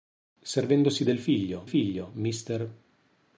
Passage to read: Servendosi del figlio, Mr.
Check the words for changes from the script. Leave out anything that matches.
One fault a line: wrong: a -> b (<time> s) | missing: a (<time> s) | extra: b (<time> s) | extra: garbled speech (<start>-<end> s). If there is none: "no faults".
extra: figlio (1.6 s)